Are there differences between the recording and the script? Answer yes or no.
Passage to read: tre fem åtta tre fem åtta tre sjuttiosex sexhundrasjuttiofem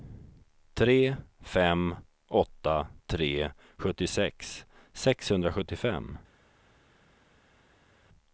yes